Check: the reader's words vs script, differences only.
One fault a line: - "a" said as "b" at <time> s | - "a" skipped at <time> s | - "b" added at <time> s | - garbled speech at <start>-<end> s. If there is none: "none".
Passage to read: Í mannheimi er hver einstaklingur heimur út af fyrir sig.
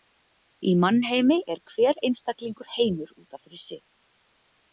none